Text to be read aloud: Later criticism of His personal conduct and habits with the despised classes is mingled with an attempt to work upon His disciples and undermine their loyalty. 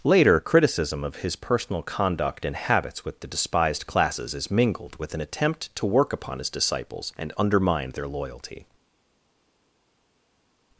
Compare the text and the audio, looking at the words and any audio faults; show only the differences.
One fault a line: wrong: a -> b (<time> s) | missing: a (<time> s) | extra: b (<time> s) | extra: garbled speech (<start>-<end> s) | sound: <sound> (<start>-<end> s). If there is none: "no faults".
no faults